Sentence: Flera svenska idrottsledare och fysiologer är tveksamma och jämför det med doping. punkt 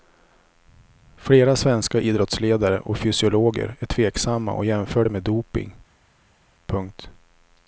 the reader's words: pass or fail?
pass